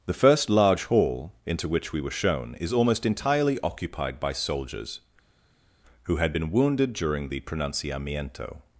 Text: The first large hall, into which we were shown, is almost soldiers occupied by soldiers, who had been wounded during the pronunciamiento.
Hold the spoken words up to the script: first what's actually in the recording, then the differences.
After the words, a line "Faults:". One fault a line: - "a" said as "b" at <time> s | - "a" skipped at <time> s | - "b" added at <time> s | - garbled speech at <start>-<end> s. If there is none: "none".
The first large hall, into which we were shown, is almost entirely occupied by soldiers, who had been wounded during the pronunciamiento.
Faults:
- "soldiers" said as "entirely" at 3.0 s